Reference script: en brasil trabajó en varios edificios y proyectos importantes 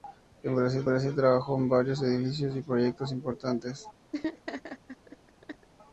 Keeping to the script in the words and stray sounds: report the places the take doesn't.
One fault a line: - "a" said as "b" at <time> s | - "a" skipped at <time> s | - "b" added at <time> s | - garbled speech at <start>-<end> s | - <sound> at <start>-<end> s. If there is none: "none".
- "brasil" added at 0.9 s
- laugh at 4.1-5.7 s